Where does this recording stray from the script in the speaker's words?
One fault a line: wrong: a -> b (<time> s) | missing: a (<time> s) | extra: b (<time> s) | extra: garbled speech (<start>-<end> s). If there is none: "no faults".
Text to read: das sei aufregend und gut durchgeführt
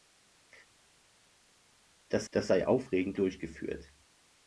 extra: das (2.3 s)
missing: und gut (3.2 s)